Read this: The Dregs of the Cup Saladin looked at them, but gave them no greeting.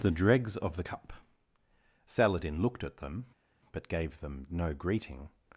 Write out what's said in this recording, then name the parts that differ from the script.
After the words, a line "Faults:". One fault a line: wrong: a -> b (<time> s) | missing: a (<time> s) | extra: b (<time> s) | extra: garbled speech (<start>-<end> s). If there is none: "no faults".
The Dregs of the Cup Saladin looked at them, but gave them no greeting.
Faults:
no faults